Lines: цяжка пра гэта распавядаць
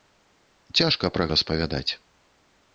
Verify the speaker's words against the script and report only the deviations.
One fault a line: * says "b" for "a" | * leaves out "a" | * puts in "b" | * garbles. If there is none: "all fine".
* leaves out "гэта"